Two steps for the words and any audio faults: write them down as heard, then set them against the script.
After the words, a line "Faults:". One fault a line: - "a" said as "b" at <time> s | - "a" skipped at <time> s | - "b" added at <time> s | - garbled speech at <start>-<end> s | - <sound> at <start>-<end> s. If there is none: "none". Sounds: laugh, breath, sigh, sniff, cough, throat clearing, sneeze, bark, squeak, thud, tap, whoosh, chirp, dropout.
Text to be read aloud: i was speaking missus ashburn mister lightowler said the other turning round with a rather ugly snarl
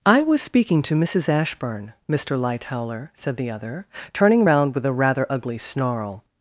i was speaking to missus ashburn mister lightowler said the other turning round with a rather ugly snarl
Faults:
- "to" added at 0.8 s